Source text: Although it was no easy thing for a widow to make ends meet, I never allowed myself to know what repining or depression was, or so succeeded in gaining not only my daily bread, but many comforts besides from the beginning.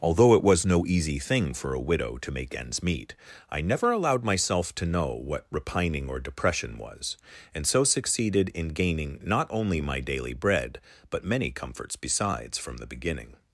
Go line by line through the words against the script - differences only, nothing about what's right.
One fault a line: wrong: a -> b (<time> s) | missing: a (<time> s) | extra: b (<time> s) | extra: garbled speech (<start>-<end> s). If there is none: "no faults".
wrong: or -> and (7.5 s)